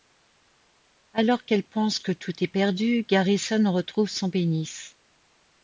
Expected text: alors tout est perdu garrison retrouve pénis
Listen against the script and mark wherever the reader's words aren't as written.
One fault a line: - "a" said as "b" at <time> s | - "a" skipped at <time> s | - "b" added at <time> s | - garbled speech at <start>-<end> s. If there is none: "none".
- "qu'elle pense que" added at 1.4 s
- "son" added at 4.1 s